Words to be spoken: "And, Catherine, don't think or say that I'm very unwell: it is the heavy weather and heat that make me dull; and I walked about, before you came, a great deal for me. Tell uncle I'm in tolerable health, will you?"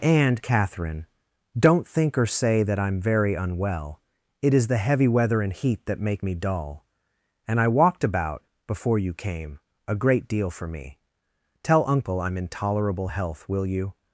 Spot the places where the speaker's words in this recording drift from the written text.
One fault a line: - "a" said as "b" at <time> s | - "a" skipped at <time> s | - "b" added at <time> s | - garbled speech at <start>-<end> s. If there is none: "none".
none